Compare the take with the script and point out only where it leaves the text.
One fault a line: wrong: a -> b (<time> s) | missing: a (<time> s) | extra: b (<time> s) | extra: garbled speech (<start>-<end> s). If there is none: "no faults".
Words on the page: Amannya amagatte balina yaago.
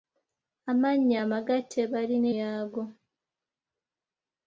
no faults